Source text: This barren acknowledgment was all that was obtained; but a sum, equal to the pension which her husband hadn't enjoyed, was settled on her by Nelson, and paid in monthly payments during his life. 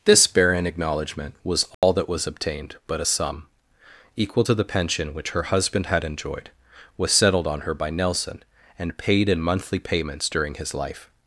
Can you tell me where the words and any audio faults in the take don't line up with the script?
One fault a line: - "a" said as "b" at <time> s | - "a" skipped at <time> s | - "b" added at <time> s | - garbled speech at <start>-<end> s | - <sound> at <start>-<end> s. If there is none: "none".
- dropout at 1.7-1.8 s
- "hadn't" said as "had" at 5.9 s